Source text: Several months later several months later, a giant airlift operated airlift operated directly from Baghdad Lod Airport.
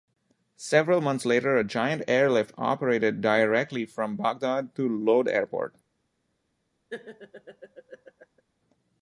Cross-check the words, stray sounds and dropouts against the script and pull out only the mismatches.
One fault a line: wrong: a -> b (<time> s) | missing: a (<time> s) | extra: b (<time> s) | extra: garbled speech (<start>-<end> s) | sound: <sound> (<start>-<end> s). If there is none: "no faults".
missing: several months later (1.6 s)
missing: airlift operated (3.2 s)
extra: to (4.8 s)
sound: laugh (6.9-8.4 s)